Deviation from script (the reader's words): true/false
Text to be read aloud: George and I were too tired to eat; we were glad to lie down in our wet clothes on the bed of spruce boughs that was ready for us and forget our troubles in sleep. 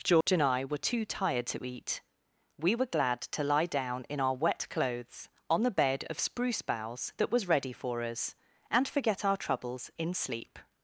false